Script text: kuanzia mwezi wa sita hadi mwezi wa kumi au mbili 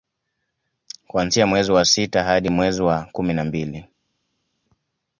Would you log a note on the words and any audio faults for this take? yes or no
yes